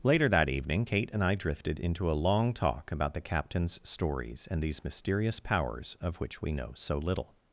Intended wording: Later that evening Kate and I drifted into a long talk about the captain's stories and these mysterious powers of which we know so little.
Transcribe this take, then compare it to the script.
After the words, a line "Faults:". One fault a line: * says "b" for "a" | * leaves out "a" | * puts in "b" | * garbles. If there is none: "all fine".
Later that evening Kate and I drifted into a long talk about the captain's stories and these mysterious powers of which we know so little.
Faults:
all fine